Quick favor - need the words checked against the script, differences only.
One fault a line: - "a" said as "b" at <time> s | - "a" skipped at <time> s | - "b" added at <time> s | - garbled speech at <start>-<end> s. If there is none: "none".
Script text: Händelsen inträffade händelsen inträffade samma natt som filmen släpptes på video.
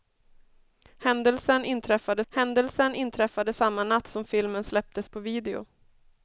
none